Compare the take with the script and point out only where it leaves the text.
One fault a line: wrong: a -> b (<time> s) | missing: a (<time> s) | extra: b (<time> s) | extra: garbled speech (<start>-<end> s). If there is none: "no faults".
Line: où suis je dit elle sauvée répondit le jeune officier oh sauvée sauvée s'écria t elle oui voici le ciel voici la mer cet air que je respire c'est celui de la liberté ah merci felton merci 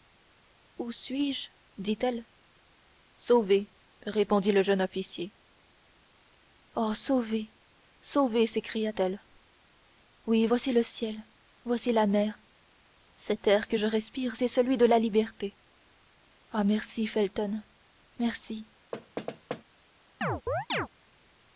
no faults